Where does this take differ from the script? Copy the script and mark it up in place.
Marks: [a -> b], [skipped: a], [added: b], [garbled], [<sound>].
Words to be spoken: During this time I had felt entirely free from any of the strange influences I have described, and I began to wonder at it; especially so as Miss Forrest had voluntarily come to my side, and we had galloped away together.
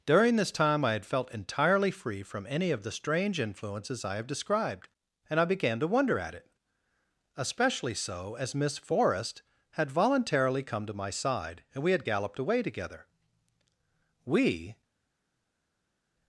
During this time I had felt entirely free from any of the strange influences I have described, and I began to wonder at it; especially so as Miss Forrest had voluntarily come to my side, and we had galloped away together. [added: We]